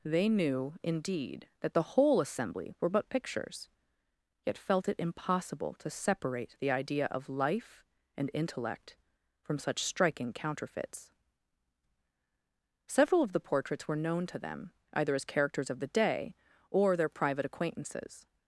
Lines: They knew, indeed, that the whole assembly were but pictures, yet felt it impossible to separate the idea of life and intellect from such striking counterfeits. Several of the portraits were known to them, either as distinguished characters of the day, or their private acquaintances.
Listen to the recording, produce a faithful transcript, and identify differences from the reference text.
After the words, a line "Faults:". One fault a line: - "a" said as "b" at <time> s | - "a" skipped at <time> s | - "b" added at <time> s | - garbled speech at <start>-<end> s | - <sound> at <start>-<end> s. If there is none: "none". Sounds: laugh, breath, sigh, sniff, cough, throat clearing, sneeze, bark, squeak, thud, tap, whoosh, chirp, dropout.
They knew, indeed, that the whole assembly were but pictures, yet felt it impossible to separate the idea of life and intellect from such striking counterfeits. Several of the portraits were known to them, either as characters of the day, or their private acquaintances.
Faults:
- "distinguished" skipped at 15.2 s